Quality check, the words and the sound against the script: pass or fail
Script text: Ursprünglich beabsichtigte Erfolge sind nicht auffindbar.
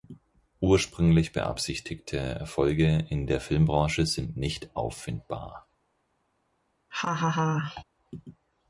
fail